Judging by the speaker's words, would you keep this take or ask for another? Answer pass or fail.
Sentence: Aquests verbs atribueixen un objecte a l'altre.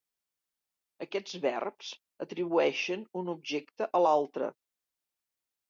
pass